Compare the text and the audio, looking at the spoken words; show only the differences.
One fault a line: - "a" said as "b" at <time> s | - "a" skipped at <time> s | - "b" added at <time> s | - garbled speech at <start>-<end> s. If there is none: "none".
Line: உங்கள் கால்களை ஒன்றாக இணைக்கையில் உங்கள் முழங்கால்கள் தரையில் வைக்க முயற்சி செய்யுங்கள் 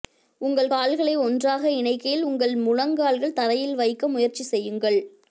none